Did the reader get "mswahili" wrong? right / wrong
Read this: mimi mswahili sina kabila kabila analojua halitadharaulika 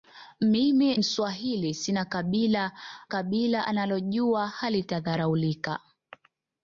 right